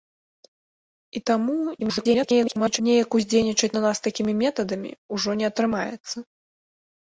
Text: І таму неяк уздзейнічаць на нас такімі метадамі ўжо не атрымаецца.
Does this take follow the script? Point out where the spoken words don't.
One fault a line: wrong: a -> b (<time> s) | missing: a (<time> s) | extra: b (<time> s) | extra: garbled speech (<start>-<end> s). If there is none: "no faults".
extra: garbled speech (1.8-2.8 s)